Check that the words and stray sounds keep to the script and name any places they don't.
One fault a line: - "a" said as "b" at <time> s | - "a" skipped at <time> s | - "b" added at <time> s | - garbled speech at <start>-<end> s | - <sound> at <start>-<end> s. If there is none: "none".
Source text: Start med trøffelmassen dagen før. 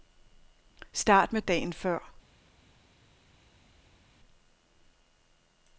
- "trøffelmassen" skipped at 1.4 s